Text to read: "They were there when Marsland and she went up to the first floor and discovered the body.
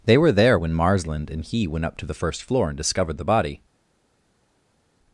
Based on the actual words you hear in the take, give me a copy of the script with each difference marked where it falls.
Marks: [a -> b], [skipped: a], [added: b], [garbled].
"They were there when Marsland and [she -> he] went up to the first floor and discovered the body.